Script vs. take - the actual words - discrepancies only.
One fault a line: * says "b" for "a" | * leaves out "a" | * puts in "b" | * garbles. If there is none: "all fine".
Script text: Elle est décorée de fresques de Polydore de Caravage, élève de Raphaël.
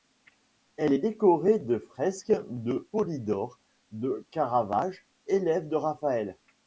all fine